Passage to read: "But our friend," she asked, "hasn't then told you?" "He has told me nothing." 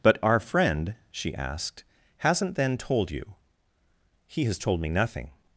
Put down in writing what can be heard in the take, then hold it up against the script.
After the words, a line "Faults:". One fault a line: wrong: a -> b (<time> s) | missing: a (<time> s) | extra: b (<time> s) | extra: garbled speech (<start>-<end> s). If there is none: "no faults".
"But our friend," she asked, "hasn't then told you?" "He has told me nothing."
Faults:
no faults